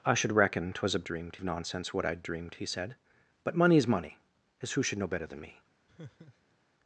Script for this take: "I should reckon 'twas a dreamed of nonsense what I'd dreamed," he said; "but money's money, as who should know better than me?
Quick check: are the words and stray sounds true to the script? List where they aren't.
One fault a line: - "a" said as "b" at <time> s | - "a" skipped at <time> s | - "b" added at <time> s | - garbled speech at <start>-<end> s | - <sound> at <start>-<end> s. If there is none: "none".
- laugh at 5.9-6.6 s